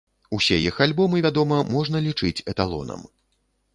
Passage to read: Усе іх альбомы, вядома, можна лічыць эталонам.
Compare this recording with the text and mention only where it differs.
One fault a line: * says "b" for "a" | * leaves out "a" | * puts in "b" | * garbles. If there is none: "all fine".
all fine